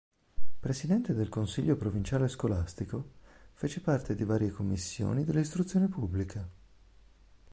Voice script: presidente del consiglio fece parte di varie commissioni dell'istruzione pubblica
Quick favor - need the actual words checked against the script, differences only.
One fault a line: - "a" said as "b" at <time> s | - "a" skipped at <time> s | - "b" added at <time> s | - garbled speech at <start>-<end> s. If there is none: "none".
- "provinciale scolastico" added at 1.8 s